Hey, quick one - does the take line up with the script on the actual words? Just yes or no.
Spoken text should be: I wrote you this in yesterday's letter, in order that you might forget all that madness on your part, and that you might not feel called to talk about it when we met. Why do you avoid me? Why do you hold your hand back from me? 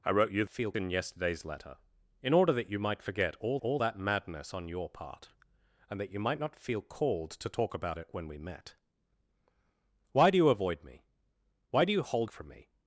no